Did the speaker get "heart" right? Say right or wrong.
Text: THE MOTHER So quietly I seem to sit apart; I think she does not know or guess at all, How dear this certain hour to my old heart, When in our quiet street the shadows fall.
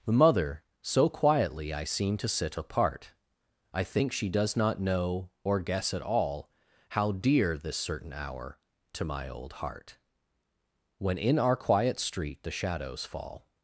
right